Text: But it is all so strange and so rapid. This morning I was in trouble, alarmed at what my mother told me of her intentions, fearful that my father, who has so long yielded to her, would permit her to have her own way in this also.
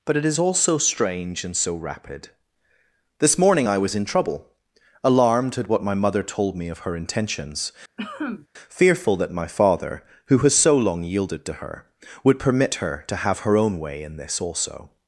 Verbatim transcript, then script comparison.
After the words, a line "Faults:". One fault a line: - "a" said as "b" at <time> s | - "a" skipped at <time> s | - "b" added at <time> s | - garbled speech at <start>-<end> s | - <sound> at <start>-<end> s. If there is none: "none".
But it is all so strange and so rapid. This morning I was in trouble, alarmed at what my mother told me of her intentions, fearful that my father, who has so long yielded to her, would permit her to have her own way in this also.
Faults:
- cough at 8.0-8.5 s